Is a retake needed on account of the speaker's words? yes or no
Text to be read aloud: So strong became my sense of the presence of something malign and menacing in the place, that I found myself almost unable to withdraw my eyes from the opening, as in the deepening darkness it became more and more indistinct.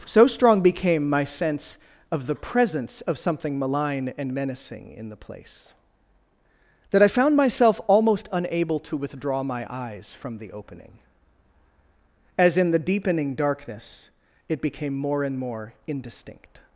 no